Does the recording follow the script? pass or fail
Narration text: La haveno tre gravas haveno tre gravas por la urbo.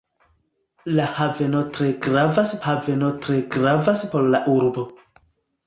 pass